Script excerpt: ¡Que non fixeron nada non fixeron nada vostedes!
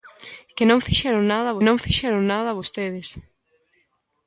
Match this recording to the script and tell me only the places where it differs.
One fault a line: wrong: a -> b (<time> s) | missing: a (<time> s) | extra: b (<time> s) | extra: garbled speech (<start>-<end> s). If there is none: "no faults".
no faults